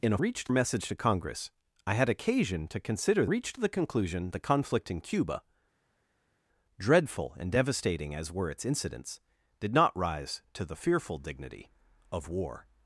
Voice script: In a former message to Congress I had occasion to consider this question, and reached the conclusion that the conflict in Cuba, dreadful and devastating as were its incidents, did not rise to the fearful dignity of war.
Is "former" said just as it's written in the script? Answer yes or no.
no